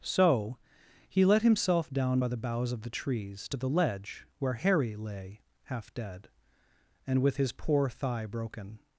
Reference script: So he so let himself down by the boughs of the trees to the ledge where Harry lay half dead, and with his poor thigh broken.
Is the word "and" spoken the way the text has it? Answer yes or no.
yes